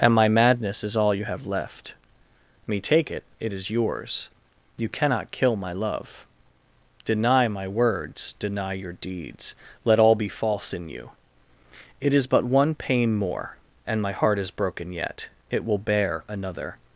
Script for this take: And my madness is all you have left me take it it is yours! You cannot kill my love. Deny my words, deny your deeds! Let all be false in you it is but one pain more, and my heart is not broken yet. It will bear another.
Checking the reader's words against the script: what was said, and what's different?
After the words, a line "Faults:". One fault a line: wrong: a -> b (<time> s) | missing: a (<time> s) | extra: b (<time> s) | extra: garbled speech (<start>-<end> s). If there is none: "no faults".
And my madness is all you have left me take it it is yours! You cannot kill my love. Deny my words, deny your deeds! Let all be false in you it is but one pain more, and my heart is broken yet. It will bear another.
Faults:
missing: not (14.5 s)